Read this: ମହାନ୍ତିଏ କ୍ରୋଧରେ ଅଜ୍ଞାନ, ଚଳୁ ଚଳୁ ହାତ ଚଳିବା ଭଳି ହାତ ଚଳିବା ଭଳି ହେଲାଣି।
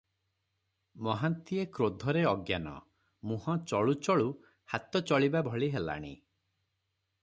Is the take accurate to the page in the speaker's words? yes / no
no